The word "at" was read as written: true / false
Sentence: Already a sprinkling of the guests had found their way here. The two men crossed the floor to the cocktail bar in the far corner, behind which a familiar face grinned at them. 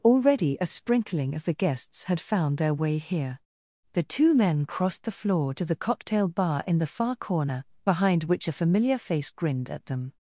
true